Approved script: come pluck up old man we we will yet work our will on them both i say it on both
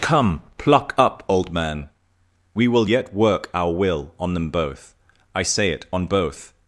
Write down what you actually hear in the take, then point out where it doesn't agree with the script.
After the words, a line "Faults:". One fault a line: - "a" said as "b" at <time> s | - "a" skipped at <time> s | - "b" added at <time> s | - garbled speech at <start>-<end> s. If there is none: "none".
come pluck up old man we will yet work our will on them both i say it on both
Faults:
- "we" skipped at 2.7 s